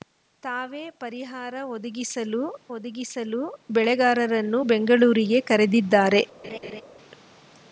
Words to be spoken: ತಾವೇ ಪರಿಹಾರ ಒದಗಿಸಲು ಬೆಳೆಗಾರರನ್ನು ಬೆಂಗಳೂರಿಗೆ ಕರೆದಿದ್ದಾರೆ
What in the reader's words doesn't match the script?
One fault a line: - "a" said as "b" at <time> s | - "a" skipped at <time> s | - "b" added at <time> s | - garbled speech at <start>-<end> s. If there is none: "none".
- "ಒದಗಿಸಲು" added at 2.7 s